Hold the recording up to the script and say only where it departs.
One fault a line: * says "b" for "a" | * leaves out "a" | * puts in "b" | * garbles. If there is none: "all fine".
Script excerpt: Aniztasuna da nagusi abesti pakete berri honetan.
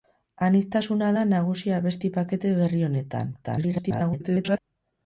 * garbles